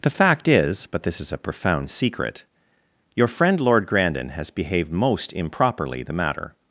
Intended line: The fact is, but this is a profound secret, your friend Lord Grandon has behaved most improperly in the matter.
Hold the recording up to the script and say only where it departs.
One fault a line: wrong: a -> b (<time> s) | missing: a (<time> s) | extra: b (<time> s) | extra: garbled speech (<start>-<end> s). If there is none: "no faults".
missing: in (6.0 s)